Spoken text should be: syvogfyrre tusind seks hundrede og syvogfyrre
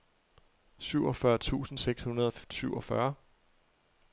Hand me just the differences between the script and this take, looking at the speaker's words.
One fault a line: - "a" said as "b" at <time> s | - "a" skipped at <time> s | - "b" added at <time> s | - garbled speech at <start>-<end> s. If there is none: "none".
none